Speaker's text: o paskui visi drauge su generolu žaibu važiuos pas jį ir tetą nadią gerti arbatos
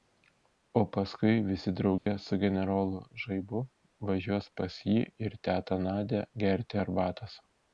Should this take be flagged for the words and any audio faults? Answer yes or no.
yes